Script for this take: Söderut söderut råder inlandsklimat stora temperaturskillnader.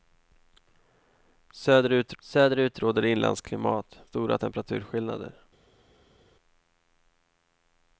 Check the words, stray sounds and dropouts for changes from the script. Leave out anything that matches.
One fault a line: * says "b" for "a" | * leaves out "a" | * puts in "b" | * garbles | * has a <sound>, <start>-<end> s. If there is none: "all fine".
all fine